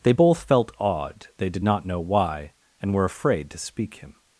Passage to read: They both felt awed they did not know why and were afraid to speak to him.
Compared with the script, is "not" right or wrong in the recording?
right